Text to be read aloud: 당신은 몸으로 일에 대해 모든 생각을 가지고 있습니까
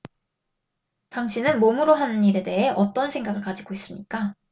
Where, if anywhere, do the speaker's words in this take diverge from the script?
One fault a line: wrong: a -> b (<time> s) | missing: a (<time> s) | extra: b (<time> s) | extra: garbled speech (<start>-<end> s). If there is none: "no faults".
extra: 하는 (1.9 s)
wrong: 모든 -> 어떤 (2.7 s)